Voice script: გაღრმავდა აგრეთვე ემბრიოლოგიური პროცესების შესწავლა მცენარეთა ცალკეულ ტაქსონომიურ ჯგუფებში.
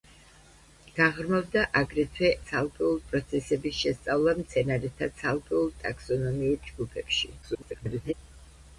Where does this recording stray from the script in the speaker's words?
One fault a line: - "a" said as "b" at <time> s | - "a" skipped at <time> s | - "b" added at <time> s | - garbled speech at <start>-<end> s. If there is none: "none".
- "ემბრიოლოგიური" said as "ცალკეულ" at 2.5 s
- garbled speech at 7.4-8.1 s